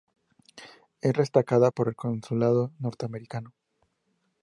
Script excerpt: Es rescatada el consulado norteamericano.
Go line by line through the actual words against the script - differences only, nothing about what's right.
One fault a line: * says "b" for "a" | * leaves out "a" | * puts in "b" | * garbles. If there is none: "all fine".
* puts in "por"